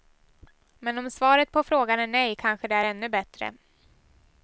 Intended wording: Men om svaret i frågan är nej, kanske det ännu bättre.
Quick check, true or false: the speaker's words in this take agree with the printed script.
false